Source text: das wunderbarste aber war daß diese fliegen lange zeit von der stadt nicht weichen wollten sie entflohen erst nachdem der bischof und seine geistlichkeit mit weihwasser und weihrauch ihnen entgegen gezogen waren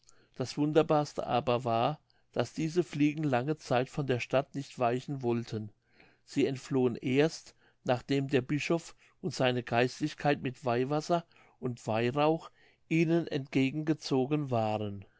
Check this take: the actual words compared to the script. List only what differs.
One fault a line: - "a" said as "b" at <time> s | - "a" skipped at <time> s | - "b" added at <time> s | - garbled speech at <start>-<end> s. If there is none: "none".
none